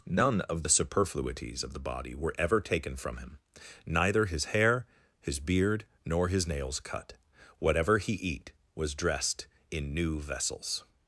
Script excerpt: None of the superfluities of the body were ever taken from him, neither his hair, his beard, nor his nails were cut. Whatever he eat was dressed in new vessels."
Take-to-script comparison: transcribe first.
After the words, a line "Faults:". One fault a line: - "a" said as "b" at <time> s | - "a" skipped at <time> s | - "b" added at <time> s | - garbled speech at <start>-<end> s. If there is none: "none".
None of the superfluities of the body were ever taken from him, neither his hair, his beard, nor his nails cut. Whatever he eat was dressed in new vessels."
Faults:
- "were" skipped at 6.8 s